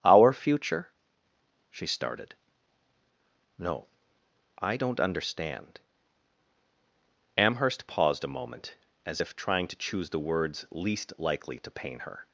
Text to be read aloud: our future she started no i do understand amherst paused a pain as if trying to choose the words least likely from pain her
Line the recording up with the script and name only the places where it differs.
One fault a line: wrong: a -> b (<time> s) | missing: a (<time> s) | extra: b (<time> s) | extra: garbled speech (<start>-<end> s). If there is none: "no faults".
wrong: do -> don't (4.7 s)
wrong: pain -> moment (8.3 s)
wrong: from -> to (11.6 s)